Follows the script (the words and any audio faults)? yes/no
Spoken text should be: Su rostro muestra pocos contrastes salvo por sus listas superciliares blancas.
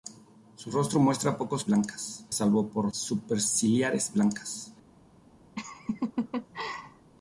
no